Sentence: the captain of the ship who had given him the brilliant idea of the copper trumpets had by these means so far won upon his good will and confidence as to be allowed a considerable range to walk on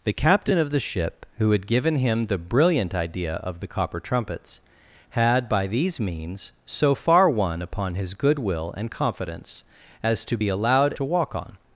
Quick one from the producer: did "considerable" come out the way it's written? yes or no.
no